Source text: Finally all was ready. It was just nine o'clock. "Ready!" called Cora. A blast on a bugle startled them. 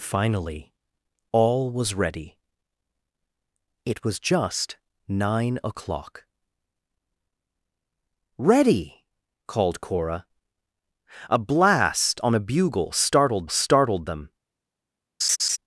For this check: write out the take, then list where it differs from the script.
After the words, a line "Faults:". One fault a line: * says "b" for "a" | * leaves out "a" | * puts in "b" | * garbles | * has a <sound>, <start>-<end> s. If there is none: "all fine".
Finally all was ready. It was just nine o'clock. "Ready!" called Cora. A blast on a bugle startled startled them.
Faults:
* puts in "startled"
* has a laugh, 15.2-15.6 s